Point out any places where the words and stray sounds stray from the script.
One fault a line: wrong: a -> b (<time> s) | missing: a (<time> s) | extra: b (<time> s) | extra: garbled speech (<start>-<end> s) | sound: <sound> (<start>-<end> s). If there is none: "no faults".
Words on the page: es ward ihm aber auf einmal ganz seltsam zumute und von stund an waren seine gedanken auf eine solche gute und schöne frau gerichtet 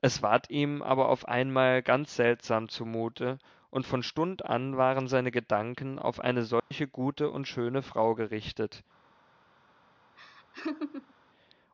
sound: dropout (6.6-6.7 s)
sound: laugh (10.2-11.1 s)